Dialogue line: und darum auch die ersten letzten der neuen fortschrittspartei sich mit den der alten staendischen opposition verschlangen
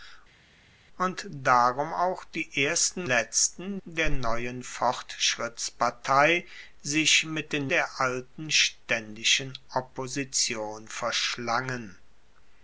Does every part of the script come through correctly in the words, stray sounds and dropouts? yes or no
yes